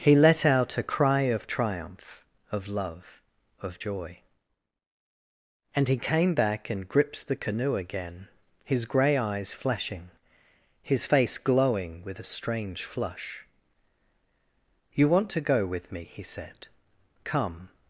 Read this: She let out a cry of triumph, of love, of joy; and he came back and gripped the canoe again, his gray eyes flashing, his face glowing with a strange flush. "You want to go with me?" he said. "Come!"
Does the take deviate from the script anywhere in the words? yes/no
yes